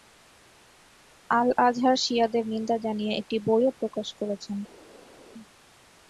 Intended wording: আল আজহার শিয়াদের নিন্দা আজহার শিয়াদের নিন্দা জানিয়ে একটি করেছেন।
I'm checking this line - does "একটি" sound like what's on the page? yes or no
no